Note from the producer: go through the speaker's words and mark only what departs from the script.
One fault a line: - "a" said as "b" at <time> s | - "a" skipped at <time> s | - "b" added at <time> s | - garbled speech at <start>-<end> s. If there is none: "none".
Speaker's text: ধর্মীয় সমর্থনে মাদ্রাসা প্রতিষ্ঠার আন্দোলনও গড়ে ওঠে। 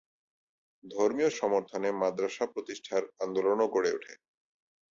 none